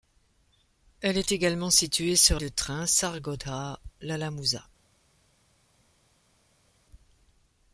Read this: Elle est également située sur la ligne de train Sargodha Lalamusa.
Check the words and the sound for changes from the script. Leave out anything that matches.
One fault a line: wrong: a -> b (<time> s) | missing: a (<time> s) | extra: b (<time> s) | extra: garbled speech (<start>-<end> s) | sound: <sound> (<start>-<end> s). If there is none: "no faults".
missing: la ligne (2.4 s)